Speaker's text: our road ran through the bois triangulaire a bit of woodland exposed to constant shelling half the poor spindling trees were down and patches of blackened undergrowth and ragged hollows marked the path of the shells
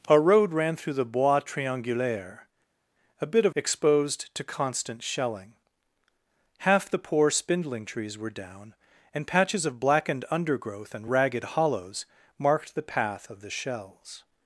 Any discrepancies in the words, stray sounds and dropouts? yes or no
yes